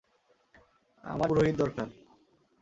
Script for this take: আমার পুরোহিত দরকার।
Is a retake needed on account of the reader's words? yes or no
no